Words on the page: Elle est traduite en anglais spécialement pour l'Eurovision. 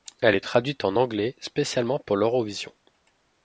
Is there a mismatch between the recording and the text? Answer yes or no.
no